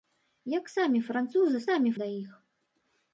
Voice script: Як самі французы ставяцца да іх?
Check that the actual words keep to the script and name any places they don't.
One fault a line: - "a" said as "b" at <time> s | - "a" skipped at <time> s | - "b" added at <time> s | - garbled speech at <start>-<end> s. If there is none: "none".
- "ставяцца" said as "самі" at 1.7 s